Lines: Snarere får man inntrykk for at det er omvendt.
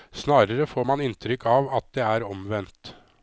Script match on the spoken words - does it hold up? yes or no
no